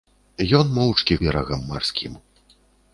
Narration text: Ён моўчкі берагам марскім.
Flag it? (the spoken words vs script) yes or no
no